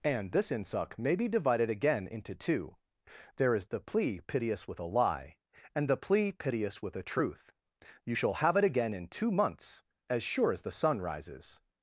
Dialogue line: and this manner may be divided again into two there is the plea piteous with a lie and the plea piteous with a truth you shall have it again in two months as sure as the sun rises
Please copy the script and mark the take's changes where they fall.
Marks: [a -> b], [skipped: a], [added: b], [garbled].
and this [manner -> insuck] may be divided again into two there is the plea piteous with a lie and the plea piteous with a truth you shall have it again in two months as sure as the sun rises